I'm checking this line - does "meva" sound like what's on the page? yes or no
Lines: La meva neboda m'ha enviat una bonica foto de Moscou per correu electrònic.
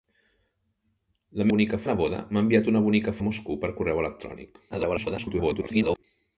no